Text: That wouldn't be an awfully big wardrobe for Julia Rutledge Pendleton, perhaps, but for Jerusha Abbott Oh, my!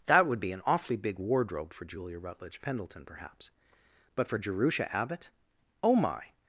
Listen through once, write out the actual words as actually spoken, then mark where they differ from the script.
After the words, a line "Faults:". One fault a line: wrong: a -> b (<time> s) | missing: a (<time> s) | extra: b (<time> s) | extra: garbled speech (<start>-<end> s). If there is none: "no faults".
That would be an awfully big wardrobe for Julia Rutledge Pendleton, perhaps, but for Jerusha Abbott Oh, my!
Faults:
wrong: wouldn't -> would (0.3 s)